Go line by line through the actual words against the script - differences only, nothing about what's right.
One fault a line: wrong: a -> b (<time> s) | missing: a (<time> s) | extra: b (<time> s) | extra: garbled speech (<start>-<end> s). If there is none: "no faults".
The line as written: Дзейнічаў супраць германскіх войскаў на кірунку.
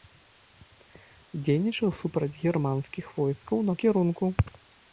no faults